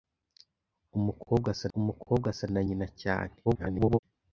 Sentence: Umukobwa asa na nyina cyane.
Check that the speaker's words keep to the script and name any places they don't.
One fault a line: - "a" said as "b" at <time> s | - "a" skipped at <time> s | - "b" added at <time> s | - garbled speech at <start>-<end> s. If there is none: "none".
- "umukobwa asa" added at 1.8 s
- garbled speech at 3.4-4.0 s